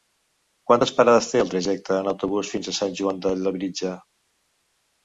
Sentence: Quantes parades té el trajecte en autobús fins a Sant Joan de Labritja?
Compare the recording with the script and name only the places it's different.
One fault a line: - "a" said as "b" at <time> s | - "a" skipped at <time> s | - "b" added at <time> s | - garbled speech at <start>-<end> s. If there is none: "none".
none